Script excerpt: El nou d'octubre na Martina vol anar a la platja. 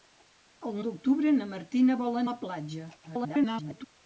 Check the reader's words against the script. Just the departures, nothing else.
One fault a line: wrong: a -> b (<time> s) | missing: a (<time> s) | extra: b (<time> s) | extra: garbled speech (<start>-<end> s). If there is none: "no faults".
missing: nou (0.8 s)
missing: anar (2.2 s)
extra: garbled speech (3.0-3.9 s)